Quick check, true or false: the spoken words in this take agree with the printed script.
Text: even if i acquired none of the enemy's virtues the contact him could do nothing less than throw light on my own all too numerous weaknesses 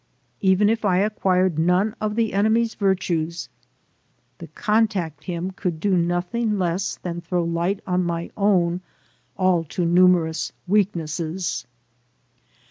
true